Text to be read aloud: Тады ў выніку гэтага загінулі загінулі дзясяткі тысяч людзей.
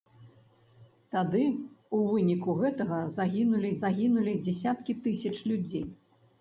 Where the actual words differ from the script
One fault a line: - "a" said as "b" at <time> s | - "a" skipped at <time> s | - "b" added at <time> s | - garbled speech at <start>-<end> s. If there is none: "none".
none